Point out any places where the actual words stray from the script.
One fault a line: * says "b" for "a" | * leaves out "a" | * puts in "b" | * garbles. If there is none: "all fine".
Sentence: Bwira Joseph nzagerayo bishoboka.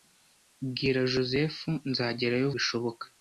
all fine